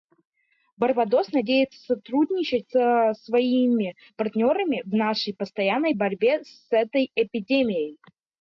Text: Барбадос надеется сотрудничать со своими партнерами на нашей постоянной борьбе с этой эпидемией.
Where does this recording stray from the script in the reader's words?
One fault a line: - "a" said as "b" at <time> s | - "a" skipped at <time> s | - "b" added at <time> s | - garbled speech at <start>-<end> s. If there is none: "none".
- "на" said as "в" at 4.8 s